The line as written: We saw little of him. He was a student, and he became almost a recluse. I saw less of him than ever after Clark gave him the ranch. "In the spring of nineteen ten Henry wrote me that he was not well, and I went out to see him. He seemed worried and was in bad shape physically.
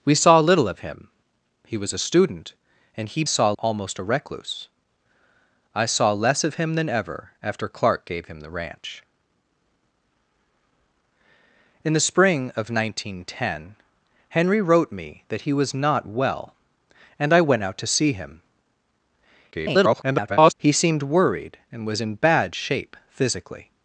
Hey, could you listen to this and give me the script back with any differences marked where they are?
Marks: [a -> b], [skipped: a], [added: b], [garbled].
We saw little of him. He was a student, and he [became -> saw] almost a recluse. I saw less of him than ever after Clark gave him the ranch. "In the spring of nineteen ten Henry wrote me that he was not well, and I went out to see him. [garbled] He seemed worried and was in bad shape physically.